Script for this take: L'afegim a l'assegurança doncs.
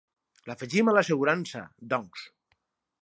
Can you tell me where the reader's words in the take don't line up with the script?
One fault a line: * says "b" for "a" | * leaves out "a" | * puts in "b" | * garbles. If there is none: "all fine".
all fine